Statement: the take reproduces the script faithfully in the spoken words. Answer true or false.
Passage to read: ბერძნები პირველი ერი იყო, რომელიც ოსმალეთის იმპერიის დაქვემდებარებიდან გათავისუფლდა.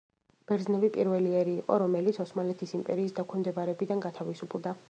true